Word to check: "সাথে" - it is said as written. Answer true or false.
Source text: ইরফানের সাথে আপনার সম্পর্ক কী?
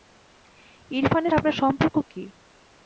false